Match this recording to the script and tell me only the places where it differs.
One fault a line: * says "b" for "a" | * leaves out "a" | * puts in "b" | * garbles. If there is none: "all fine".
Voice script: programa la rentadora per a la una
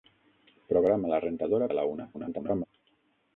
* leaves out "per"
* garbles